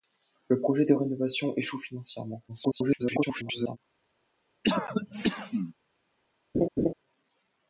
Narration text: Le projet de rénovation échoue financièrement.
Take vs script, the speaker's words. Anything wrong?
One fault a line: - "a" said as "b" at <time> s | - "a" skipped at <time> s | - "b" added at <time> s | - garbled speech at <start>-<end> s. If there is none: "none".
- garbled speech at 2.5-3.8 s